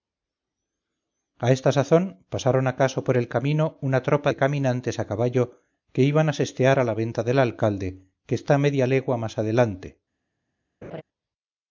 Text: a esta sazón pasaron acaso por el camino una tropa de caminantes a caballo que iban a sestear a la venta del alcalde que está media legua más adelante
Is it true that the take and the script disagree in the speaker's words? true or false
false